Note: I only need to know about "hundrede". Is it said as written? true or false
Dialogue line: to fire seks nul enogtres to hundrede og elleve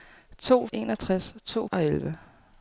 false